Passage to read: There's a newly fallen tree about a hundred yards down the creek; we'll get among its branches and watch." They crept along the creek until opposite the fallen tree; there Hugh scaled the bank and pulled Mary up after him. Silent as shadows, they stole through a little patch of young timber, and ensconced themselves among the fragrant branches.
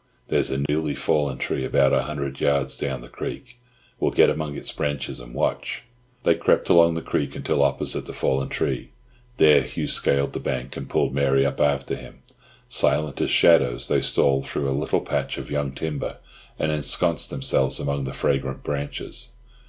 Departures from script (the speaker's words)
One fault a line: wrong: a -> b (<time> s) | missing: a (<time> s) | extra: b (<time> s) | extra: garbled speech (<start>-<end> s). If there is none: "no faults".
no faults